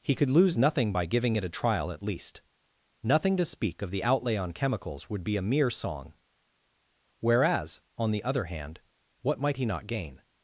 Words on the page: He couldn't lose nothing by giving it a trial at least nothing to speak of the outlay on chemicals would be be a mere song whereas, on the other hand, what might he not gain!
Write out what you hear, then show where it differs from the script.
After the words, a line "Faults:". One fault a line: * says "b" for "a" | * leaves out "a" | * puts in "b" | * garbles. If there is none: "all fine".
He could lose nothing by giving it a trial at least nothing to speak of the outlay on chemicals would be a mere song whereas, on the other hand, what might he not gain!
Faults:
* says "could" for "couldn't"
* leaves out "be"